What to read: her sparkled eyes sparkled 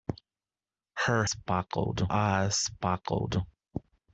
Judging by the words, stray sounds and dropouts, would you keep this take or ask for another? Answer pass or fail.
pass